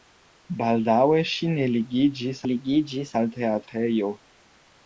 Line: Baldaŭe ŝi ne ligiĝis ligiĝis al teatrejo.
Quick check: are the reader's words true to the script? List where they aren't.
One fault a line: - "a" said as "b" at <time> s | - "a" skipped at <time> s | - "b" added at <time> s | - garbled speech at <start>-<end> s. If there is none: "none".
none